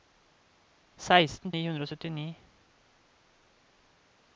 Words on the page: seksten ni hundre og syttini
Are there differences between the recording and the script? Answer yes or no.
no